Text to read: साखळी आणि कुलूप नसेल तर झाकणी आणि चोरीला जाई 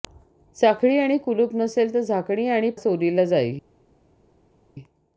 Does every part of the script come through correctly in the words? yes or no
yes